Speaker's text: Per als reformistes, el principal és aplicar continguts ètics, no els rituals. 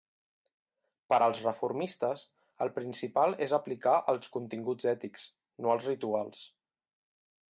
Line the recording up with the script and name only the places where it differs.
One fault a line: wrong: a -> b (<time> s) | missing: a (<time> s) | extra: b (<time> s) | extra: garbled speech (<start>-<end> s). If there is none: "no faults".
extra: els (4.2 s)